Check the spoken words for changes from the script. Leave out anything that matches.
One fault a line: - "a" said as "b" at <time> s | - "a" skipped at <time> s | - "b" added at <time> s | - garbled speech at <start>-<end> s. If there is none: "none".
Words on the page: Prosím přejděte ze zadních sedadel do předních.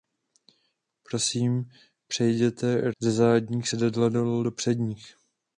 none